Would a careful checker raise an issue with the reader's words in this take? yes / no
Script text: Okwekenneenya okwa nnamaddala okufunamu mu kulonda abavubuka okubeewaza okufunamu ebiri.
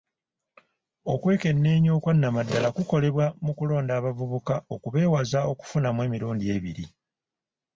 yes